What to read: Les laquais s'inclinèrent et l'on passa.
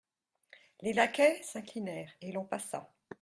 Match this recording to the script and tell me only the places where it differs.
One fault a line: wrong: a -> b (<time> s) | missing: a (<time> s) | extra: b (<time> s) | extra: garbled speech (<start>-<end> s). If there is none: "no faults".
no faults